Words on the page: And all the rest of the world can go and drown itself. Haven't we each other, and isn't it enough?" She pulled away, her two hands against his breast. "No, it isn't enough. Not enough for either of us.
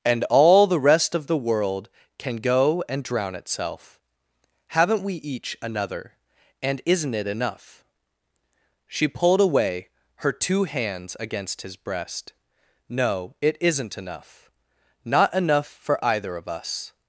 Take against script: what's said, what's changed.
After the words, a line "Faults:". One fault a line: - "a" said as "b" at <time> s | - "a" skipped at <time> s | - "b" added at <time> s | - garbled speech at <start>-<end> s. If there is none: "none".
And all the rest of the world can go and drown itself. Haven't we each another, and isn't it enough?" She pulled away, her two hands against his breast. "No, it isn't enough. Not enough for either of us.
Faults:
- "other" said as "another" at 5.6 s